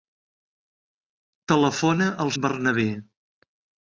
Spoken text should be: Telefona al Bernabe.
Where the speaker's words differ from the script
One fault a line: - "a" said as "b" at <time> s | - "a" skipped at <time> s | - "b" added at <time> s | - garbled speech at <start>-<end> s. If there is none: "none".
none